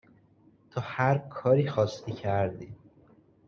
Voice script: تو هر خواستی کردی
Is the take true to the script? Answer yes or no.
no